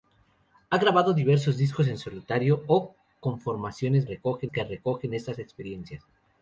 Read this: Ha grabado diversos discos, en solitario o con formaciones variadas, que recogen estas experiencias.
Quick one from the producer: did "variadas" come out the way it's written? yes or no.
no